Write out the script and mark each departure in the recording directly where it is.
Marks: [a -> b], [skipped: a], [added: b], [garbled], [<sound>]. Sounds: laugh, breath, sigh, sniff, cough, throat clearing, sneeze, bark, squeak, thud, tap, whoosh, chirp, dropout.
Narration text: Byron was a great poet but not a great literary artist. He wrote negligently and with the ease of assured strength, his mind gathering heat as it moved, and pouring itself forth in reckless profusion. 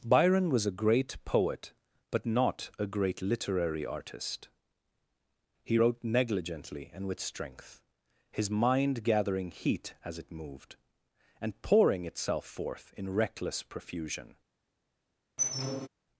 Byron was a great poet but not a great literary artist. He wrote negligently and with [skipped: the ease of assured] strength, his mind gathering heat as it moved, and pouring itself forth in reckless profusion. [squeak]